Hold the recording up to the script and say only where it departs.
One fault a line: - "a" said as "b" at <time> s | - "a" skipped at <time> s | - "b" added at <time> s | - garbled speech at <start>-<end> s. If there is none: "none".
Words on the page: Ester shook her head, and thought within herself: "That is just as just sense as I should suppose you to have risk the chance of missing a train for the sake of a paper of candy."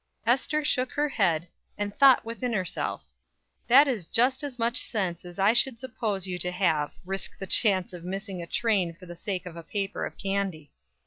- "just" said as "much" at 4.6 s